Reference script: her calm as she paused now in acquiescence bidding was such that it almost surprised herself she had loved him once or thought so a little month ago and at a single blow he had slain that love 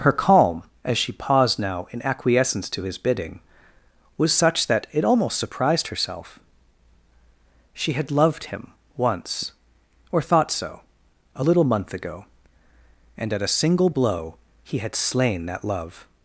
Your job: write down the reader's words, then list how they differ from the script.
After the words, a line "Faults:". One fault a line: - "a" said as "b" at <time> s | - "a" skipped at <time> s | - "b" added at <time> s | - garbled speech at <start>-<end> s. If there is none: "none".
her calm as she paused now in acquiescence to his bidding was such that it almost surprised herself she had loved him once or thought so a little month ago and at a single blow he had slain that love
Faults:
- "to his" added at 2.7 s